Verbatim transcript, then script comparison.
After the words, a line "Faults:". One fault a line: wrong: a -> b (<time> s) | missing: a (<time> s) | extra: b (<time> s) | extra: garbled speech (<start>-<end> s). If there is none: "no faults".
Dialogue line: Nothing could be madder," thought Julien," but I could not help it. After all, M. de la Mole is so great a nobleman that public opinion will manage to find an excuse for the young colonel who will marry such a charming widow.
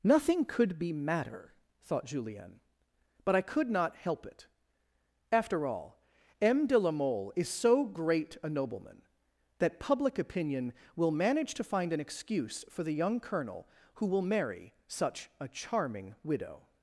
Nothing could be madder," thought Julien," but I could not help it. After all, M. de la Mole is so great a nobleman that public opinion will manage to find an excuse for the young colonel who will marry such a charming widow.
Faults:
no faults